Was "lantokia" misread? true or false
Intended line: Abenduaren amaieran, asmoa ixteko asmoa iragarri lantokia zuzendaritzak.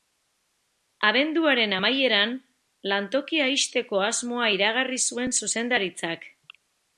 true